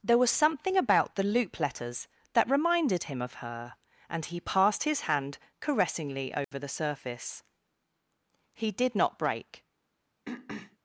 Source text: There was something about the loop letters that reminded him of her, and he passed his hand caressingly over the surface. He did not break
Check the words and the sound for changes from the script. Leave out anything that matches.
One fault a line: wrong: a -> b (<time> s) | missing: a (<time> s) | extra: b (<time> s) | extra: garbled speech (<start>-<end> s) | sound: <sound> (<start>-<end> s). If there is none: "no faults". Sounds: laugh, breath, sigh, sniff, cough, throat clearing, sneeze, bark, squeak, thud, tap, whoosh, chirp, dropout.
sound: dropout (6.4-6.5 s)
sound: throat clearing (10.3-10.8 s)